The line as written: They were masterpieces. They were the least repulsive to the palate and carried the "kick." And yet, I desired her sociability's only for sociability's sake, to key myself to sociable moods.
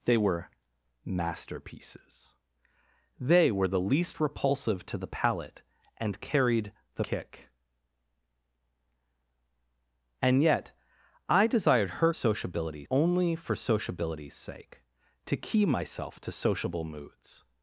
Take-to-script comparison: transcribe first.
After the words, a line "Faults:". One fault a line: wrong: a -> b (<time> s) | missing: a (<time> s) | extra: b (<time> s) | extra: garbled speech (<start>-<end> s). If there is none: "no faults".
They were masterpieces. They were the least repulsive to the palate and carried the "kick." And yet, I desired her sociability's only for sociability's sake, to key myself to sociable moods.
Faults:
no faults